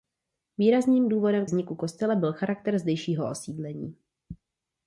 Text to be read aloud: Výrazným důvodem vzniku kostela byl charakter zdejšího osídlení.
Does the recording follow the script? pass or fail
pass